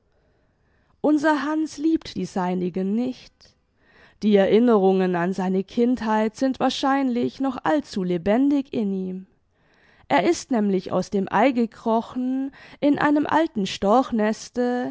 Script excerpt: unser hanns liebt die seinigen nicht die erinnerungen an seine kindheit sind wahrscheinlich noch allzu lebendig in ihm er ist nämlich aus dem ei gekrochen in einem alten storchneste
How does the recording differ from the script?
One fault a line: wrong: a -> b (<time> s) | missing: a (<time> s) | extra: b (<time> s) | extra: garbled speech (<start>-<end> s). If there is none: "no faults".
no faults